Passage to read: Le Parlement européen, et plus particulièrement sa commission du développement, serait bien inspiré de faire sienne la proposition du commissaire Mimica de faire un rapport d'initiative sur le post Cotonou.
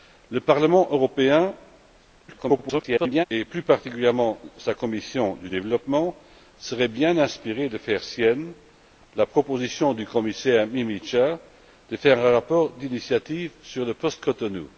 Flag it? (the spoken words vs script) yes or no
yes